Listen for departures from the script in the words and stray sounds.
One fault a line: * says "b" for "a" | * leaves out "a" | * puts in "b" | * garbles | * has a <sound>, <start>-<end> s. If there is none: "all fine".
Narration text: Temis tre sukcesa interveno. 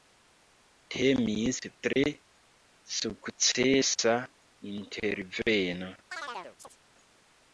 * has a dropout, 1.9-2.0 s
* has a chirp, 6.1-6.8 s